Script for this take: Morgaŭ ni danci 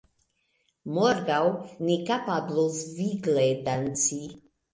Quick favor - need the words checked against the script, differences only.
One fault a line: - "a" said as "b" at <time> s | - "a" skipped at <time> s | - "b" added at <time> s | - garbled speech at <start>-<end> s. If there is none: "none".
- "kapablos vigle" added at 2.1 s